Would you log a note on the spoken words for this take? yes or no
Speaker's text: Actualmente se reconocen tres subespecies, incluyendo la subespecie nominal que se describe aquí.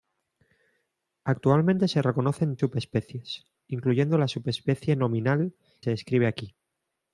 yes